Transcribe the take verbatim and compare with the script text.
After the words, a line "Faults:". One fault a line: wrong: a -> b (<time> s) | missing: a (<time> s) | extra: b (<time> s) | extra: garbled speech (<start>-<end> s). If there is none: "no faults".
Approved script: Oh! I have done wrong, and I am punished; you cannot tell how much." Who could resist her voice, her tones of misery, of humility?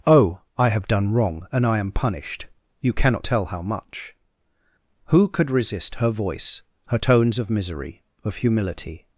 Oh! I have done wrong, and I am punished; you cannot tell how much." Who could resist her voice, her tones of misery, of humility?
Faults:
no faults